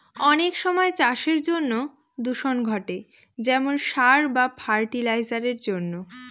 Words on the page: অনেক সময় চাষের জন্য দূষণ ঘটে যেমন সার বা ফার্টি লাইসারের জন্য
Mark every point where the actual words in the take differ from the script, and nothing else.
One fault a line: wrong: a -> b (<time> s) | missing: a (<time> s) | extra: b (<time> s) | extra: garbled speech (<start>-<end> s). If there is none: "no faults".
no faults